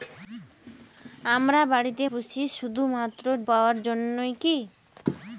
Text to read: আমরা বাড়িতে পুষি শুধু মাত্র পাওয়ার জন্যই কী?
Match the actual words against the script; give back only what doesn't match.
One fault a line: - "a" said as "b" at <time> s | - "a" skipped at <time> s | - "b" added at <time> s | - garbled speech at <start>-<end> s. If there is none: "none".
none